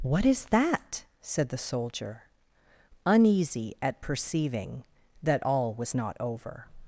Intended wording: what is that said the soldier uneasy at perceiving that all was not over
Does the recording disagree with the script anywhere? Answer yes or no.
no